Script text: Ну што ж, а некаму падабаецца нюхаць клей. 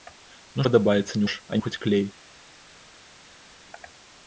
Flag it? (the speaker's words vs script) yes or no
yes